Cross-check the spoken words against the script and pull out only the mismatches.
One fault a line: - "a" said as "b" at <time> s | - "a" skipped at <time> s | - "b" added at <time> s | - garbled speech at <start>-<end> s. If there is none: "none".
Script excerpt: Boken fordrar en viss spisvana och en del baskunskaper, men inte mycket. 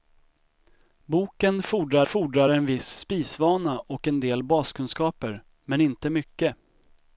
- "fordrar" added at 2.0 s